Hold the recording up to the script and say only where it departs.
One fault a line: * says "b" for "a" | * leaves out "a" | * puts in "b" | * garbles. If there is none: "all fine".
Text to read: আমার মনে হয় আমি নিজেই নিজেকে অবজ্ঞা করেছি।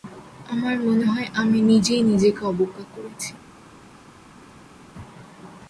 all fine